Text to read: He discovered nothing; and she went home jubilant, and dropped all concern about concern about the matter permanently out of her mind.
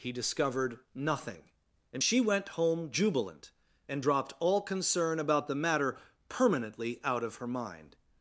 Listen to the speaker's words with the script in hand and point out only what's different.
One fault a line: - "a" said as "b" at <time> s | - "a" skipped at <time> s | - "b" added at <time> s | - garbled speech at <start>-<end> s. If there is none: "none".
- "concern about" skipped at 5.5 s